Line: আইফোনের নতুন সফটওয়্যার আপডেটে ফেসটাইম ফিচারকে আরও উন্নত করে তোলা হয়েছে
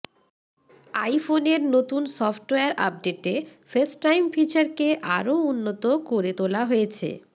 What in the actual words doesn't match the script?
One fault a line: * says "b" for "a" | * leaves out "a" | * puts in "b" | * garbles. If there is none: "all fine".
all fine